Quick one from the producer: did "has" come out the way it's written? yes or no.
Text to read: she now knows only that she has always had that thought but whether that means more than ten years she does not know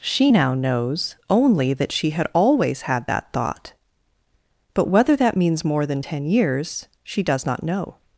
no